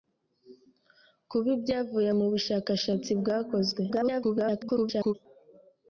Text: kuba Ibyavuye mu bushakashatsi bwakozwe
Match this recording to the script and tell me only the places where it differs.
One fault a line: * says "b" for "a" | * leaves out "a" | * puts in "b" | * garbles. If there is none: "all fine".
* garbles